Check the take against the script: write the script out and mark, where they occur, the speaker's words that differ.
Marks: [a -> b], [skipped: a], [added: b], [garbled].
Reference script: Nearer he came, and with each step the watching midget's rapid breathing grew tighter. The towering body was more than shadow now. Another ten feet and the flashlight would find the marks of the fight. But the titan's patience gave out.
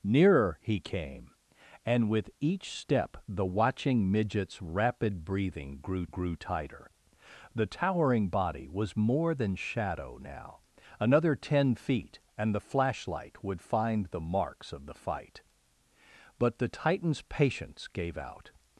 Nearer he came, and with each step the watching midget's rapid breathing grew [added: grew] tighter. The towering body was more than shadow now. Another ten feet and the flashlight would find the marks of the fight. But the titan's patience gave out.